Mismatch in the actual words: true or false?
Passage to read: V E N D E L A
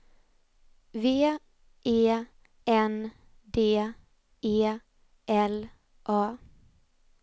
false